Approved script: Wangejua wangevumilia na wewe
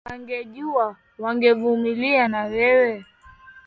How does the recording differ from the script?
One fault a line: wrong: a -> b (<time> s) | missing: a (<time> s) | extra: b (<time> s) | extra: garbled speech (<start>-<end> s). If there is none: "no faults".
no faults